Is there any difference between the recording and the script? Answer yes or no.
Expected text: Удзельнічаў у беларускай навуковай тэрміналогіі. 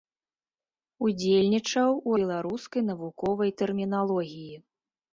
no